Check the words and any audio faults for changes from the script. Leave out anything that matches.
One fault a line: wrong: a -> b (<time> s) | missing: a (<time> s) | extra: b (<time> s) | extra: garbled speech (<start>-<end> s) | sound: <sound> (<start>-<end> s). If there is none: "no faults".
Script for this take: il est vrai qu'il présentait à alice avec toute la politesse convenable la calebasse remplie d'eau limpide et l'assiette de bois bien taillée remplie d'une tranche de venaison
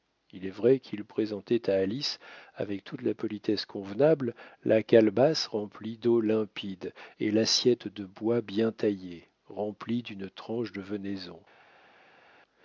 no faults